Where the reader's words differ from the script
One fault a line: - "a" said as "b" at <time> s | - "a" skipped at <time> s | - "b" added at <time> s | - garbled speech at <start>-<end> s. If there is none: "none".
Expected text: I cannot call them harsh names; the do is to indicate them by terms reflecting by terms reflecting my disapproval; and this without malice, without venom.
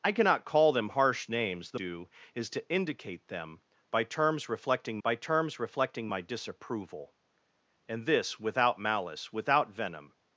none